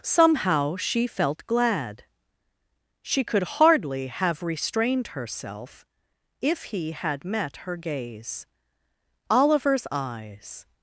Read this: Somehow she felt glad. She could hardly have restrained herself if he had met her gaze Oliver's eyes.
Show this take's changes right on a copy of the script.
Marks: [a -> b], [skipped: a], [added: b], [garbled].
Somehow she felt glad. She could hardly have restrained herself if he had met her gaze Oliver's eyes.